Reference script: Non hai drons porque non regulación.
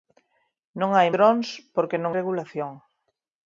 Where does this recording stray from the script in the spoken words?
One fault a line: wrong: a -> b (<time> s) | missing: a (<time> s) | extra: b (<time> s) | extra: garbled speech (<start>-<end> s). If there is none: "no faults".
no faults